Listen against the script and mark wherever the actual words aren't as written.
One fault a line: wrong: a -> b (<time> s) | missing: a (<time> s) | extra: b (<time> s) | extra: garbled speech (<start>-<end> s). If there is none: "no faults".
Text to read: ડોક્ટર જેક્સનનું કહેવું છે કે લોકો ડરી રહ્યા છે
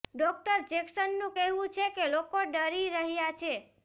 no faults